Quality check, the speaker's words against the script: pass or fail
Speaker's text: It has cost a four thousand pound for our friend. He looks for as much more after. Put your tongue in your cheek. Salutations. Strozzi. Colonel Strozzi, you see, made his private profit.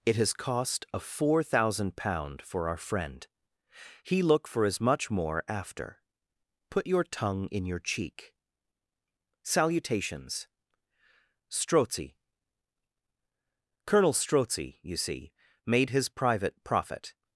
fail